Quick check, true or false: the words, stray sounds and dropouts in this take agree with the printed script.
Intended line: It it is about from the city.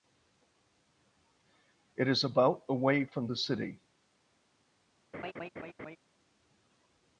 false